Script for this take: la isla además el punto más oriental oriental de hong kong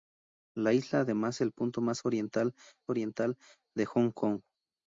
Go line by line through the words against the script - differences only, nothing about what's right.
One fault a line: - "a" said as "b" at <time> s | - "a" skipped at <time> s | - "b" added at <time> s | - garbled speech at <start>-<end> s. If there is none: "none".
none